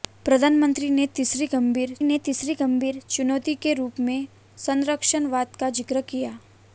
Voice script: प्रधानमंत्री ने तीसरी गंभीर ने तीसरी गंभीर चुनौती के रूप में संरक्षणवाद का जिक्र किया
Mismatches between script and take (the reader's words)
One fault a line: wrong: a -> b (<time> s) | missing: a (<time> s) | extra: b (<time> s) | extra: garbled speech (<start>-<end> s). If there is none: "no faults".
no faults